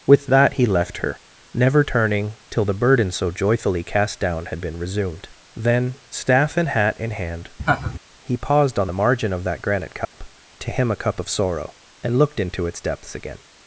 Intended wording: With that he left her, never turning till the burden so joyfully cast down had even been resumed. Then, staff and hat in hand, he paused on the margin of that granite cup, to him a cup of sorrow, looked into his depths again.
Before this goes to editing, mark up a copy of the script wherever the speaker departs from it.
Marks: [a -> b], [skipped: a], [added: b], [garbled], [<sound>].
With that he left her, never turning till the burden so joyfully cast down had [skipped: even] been resumed. Then, staff and hat in hand, [laugh] he paused on the margin of that granite cup, [dropout] to him a cup of sorrow, [added: and] looked into [his -> its] depths again.